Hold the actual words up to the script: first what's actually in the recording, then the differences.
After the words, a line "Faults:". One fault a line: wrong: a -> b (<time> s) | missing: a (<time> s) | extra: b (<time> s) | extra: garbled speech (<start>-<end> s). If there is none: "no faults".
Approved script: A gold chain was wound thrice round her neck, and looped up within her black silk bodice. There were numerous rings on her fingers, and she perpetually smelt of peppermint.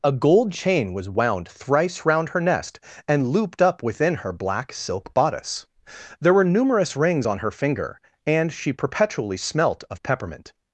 A gold chain was wound thrice round her nest, and looped up within her black silk bodice. There were numerous rings on her finger, and she perpetually smelt of peppermint.
Faults:
wrong: neck -> nest (2.4 s)
wrong: fingers -> finger (7.5 s)